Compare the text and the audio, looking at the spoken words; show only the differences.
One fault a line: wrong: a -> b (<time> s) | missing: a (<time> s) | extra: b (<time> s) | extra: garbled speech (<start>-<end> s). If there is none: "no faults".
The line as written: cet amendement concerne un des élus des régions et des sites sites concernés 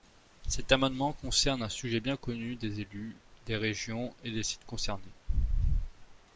extra: sujet bien connu (1.7 s)
missing: sites (4.7 s)